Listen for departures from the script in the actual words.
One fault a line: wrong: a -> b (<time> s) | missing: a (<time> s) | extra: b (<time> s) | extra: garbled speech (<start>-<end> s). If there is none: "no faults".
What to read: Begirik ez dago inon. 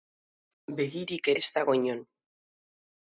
no faults